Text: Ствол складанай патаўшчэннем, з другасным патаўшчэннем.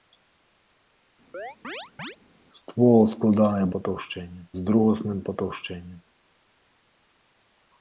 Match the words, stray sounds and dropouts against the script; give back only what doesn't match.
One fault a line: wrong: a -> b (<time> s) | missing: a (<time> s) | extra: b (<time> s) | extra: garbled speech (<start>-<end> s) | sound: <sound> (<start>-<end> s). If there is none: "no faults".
sound: chirp (1.3-2.2 s)